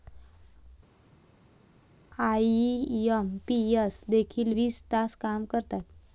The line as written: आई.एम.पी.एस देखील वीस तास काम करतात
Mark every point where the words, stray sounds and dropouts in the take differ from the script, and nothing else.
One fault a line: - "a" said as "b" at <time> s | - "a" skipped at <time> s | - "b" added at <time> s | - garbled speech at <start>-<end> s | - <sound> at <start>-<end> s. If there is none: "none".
none